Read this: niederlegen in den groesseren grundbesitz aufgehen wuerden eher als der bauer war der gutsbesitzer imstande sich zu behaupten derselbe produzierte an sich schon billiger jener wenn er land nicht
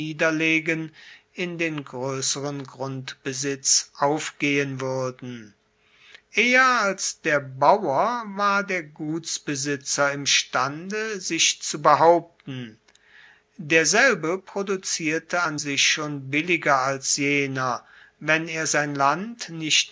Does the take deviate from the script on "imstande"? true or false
false